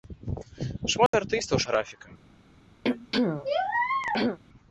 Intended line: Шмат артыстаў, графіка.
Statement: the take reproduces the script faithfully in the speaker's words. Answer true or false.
true